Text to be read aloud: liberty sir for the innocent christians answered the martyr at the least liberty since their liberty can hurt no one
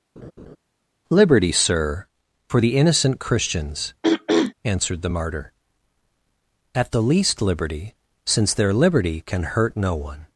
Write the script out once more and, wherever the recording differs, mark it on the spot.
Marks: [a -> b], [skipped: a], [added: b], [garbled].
liberty sir for the innocent christians answered the martyr at the least liberty since their liberty can hurt no one